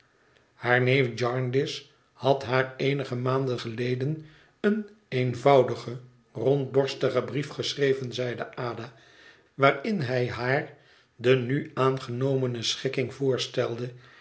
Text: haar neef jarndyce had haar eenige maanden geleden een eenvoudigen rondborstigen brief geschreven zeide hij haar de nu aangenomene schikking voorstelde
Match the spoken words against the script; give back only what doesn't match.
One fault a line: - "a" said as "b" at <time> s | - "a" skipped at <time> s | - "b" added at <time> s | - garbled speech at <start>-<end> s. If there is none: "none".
- "ada waarin" added at 8.6 s